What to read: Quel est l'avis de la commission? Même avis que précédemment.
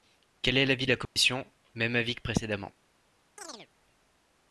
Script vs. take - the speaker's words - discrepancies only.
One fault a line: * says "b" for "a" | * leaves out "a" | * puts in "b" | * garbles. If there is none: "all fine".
all fine